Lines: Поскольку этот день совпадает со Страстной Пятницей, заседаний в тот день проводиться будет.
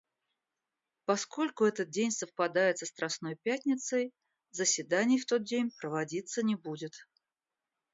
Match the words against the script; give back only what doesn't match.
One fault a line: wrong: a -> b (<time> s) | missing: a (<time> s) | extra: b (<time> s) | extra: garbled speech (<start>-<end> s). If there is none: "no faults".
extra: не (6.4 s)